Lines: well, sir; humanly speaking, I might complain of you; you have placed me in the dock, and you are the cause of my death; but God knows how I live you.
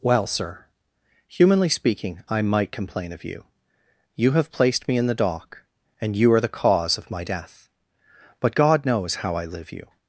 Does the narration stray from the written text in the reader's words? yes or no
no